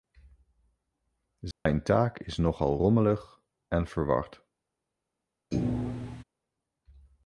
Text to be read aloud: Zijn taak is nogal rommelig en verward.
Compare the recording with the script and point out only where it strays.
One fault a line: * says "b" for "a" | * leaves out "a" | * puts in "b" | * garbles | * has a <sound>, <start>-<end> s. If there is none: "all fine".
* has a dropout, 1.5-1.7 s
* has a thud, 5.5-6.2 s